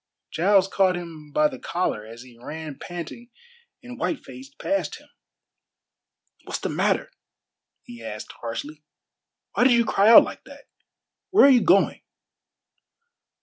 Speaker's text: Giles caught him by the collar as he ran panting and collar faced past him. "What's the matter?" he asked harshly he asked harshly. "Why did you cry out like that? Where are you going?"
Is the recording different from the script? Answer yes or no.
yes